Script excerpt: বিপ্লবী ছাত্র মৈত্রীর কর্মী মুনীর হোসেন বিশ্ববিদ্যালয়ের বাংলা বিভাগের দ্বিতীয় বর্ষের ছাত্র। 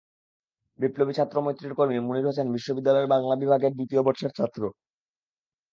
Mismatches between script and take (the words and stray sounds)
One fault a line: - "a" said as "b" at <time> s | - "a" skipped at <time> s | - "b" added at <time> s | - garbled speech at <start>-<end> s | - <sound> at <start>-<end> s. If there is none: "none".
none